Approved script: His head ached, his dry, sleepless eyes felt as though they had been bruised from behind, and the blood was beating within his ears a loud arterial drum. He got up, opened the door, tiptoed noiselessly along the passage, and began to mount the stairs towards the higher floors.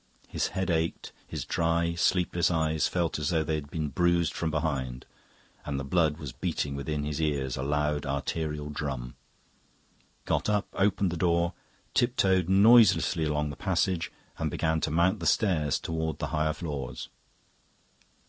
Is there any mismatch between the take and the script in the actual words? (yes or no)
yes